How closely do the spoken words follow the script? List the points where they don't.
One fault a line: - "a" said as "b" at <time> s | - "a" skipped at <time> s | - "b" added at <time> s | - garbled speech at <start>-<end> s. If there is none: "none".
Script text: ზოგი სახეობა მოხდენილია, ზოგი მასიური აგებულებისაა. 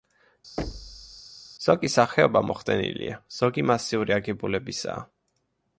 none